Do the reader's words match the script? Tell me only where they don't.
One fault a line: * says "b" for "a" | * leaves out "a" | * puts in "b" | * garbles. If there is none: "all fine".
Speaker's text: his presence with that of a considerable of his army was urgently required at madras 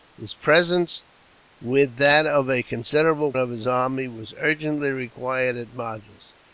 all fine